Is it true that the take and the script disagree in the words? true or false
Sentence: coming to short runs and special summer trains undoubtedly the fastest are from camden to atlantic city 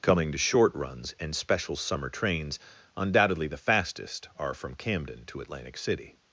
false